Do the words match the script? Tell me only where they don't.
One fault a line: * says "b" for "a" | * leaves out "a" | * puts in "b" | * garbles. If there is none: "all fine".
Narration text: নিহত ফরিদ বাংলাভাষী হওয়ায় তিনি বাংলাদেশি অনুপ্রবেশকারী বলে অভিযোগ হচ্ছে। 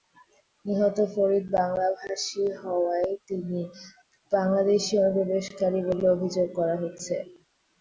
* puts in "করা"